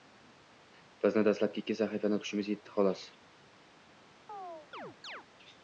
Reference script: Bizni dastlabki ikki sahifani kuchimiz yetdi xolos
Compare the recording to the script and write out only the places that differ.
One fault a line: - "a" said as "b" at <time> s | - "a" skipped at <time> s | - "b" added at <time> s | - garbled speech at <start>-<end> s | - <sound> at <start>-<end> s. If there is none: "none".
- chirp at 4.3-5.2 s